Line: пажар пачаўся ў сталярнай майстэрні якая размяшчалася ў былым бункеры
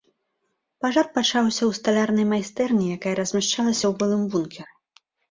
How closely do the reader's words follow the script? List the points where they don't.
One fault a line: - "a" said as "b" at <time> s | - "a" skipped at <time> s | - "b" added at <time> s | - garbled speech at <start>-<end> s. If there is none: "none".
none